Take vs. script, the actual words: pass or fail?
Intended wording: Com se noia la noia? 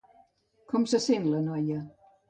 fail